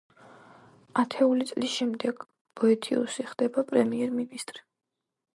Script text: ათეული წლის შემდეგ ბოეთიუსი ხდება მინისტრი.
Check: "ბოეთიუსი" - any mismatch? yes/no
no